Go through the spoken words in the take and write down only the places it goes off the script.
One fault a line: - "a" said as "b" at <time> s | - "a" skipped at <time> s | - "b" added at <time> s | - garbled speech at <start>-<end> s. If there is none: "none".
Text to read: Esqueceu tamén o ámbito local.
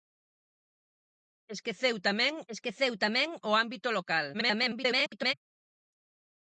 - "esqueceu tamén" added at 2.5 s
- garbled speech at 4.3-5.3 s